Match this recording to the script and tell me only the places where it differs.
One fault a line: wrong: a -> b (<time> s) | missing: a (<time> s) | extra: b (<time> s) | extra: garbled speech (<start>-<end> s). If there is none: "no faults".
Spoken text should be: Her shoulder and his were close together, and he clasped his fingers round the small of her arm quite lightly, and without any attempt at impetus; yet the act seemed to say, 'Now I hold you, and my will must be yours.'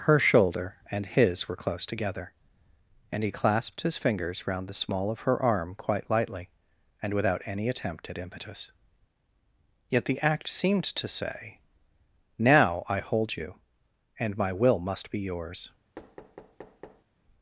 no faults